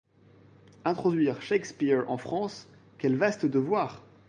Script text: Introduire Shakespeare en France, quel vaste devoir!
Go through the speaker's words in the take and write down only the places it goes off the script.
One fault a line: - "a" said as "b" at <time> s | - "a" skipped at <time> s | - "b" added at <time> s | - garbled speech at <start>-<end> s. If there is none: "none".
none